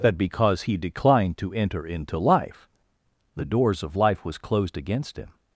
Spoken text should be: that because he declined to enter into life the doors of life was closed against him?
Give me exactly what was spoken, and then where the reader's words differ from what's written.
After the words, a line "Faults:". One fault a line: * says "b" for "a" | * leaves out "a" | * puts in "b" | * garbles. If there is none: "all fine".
that because he declined to enter into life the doors of life was closed against him?
Faults:
all fine